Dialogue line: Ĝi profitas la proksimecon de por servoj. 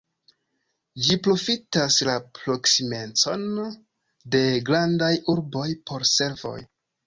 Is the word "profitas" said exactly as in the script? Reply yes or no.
yes